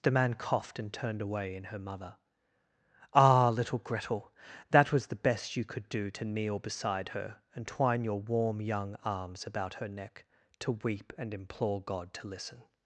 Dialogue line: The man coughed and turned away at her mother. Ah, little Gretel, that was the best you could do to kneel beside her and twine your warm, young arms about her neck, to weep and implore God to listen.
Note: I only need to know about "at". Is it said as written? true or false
false